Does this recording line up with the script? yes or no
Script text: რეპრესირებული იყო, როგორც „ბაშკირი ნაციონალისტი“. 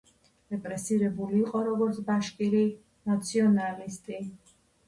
yes